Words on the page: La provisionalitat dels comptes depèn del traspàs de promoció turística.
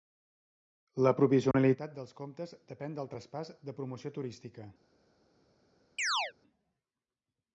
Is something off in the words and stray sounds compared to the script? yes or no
yes